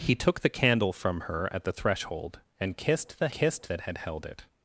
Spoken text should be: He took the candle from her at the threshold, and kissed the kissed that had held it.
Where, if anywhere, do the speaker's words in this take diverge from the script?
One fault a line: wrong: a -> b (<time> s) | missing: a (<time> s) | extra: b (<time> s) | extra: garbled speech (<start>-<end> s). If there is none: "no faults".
no faults